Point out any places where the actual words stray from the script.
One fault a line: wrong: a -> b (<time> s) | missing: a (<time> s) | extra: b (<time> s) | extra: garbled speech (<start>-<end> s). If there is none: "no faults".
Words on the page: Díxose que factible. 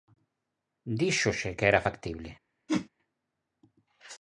extra: era (1.7 s)